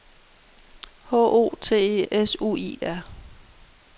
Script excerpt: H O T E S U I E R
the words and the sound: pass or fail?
pass